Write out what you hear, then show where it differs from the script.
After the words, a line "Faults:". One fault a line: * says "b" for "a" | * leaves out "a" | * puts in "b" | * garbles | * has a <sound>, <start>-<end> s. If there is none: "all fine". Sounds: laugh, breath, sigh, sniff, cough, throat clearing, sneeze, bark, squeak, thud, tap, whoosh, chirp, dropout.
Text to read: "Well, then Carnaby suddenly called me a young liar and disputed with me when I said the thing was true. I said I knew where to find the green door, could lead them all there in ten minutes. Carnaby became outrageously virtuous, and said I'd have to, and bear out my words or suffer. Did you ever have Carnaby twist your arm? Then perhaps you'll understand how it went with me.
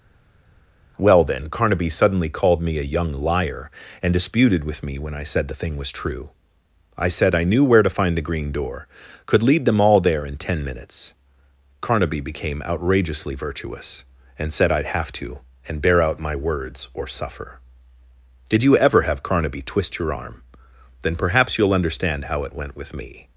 "Well, then Carnaby suddenly called me a young liar and disputed with me when I said the thing was true. I said I knew where to find the green door, could lead them all there in ten minutes. Carnaby became outrageously virtuous, and said I'd have to, and bear out my words or suffer. Did you ever have Carnaby twist your arm? Then perhaps you'll understand how it went with me.
Faults:
all fine